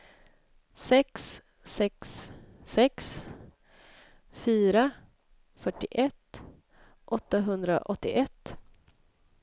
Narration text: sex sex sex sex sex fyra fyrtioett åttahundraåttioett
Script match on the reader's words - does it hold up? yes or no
no